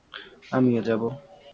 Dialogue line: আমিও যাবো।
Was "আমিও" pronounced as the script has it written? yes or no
yes